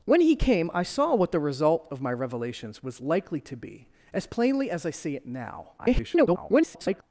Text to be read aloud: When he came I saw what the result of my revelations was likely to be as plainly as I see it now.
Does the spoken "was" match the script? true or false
true